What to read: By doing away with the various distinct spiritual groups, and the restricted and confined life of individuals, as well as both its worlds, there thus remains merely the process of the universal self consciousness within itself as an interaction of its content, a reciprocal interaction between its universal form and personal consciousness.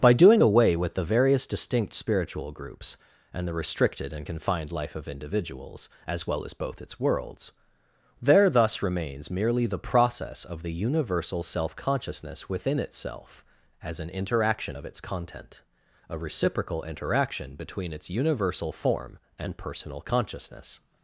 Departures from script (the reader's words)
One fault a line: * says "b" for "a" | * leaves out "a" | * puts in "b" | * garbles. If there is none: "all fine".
all fine